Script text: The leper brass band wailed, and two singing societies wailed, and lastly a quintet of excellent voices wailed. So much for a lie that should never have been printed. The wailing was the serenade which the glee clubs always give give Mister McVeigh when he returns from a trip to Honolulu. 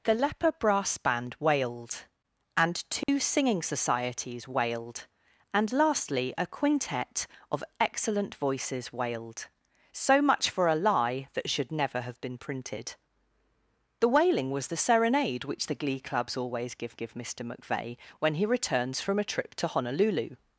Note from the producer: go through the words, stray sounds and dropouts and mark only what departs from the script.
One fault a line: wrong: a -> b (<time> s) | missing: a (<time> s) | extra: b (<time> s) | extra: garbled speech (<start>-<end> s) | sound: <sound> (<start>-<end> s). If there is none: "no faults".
sound: dropout (3.0-3.1 s)